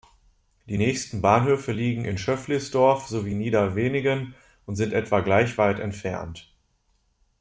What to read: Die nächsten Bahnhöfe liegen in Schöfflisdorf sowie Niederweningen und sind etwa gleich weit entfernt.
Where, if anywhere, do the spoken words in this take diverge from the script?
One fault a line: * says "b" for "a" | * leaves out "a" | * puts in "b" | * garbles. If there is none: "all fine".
all fine